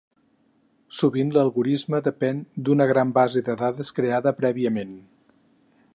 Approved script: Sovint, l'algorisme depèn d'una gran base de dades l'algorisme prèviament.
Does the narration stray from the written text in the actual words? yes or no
yes